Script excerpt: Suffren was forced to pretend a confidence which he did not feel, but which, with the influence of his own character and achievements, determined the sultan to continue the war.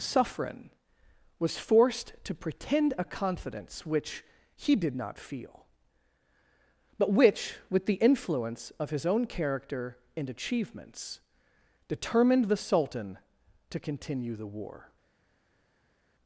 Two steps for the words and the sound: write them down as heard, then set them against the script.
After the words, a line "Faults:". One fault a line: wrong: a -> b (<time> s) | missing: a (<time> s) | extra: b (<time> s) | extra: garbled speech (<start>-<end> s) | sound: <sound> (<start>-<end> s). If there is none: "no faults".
Suffren was forced to pretend a confidence which he did not feel, but which, with the influence of his own character and achievements, determined the sultan to continue the war.
Faults:
no faults